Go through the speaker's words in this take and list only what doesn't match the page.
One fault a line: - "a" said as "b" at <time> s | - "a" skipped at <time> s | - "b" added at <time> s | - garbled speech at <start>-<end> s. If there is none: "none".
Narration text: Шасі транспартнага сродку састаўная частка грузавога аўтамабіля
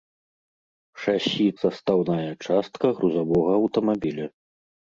- "транспартнага сродку" skipped at 1.4 s